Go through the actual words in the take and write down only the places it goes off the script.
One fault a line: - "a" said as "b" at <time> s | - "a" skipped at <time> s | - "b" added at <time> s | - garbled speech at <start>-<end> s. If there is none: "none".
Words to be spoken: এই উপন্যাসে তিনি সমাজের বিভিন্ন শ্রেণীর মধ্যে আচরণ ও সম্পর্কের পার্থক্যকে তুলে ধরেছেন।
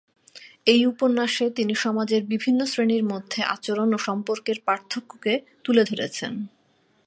none